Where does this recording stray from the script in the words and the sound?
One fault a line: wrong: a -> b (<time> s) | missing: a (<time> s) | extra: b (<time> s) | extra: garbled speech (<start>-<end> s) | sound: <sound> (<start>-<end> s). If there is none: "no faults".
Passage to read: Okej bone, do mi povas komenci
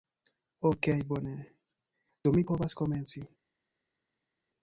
no faults